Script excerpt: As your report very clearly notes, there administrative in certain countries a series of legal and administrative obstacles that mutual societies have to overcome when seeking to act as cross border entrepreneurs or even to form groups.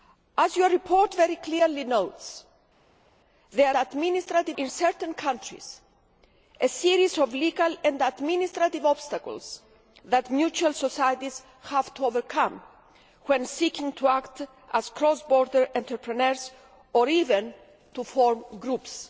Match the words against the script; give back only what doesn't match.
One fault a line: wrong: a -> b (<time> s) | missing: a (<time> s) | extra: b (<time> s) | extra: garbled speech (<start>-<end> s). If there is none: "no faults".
no faults